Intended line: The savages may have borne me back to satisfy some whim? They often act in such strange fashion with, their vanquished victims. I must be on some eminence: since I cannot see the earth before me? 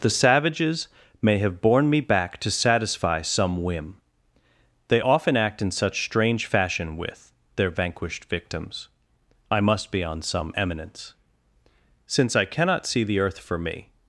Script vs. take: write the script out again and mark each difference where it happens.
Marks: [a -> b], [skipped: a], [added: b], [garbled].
The savages may have borne me back to satisfy some whim? They often act in such strange fashion with, their vanquished victims. I must be on some eminence: since I cannot see the earth [before -> for] me?